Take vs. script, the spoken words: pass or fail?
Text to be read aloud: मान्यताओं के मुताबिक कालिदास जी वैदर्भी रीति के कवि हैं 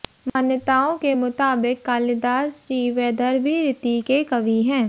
pass